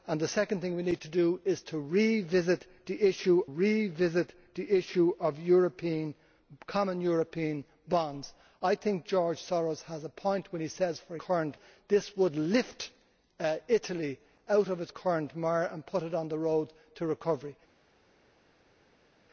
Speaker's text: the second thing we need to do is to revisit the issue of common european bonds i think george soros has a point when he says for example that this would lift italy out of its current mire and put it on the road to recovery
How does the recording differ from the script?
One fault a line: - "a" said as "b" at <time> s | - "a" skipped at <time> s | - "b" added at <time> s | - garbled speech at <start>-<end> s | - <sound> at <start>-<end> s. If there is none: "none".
- "revisit the issue" added at 3.4 s
- "example" said as "current" at 11.2 s